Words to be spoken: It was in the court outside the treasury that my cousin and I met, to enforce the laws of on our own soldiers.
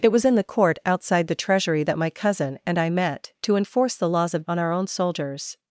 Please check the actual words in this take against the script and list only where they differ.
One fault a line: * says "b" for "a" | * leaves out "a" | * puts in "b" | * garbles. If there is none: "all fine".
all fine